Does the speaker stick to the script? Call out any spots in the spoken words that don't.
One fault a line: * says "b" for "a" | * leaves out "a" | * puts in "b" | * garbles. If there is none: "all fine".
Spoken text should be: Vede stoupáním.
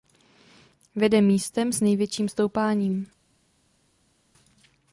* puts in "místem s největším"